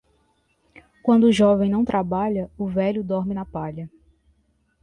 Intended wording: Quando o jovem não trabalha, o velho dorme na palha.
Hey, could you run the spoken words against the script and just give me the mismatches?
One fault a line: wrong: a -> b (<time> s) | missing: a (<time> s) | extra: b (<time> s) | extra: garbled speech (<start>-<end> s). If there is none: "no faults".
no faults